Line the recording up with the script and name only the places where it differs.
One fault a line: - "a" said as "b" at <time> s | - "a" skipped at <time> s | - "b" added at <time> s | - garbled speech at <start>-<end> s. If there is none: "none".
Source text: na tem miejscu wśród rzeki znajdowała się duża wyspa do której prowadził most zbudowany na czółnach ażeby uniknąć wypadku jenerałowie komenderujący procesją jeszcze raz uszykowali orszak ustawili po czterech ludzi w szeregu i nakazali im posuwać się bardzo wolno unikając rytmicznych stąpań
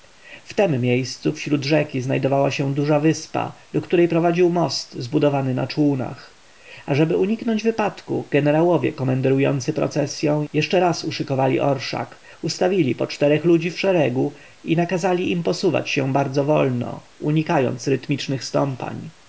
- "na" said as "w" at 0.4 s